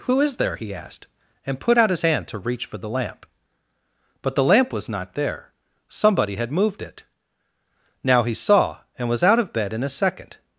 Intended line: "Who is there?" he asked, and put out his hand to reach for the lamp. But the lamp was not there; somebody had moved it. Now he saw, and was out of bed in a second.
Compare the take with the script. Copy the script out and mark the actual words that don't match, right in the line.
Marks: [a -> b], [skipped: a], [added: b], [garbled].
"Who is there?" he asked, and put out his hand to reach for the lamp. But the lamp was not there; somebody had moved it. Now he saw, and was out of bed in a second.